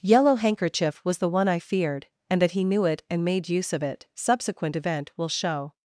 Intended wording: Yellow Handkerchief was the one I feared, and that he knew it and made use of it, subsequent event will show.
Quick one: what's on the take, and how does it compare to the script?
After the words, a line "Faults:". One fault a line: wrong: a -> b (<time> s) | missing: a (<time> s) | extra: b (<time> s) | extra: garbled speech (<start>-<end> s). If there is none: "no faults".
Yellow Handkerchief was the one I feared, and that he knew it and made use of it, subsequent event will show.
Faults:
no faults